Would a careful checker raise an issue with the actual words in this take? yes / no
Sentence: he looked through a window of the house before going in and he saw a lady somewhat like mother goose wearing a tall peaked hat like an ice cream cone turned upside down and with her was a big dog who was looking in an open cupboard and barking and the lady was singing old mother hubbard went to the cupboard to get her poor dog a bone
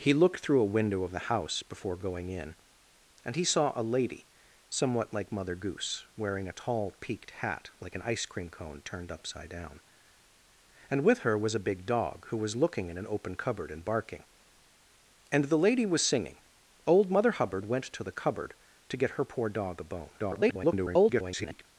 yes